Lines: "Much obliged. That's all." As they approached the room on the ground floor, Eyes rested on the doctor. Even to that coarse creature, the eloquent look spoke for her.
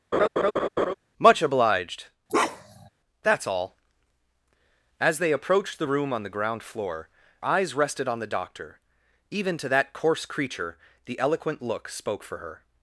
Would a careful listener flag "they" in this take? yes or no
no